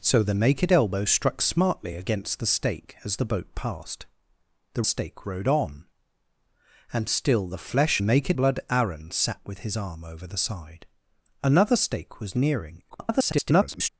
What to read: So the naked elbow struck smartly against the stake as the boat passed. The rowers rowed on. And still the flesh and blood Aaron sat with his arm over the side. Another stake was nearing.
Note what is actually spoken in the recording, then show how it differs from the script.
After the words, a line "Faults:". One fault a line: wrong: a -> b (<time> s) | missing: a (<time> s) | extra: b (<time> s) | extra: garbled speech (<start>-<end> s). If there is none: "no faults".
So the naked elbow struck smartly against the stake as the boat passed. The stake rowed on. And still the flesh naked blood Aaron sat with his arm over the side. Another stake was nearing. [garbled]
Faults:
wrong: rowers -> stake (4.8 s)
wrong: and -> naked (8.0 s)
extra: garbled speech (12.9-13.9 s)